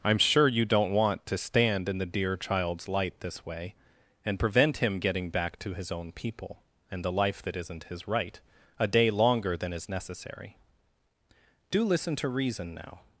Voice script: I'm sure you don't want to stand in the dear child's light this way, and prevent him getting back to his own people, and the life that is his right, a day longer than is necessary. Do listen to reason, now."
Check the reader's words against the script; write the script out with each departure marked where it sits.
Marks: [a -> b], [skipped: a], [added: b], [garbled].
I'm sure you don't want to stand in the dear child's light this way, and prevent him getting back to his own people, and the life that [is -> isn't] his right, a day longer than is necessary. Do listen to reason, now."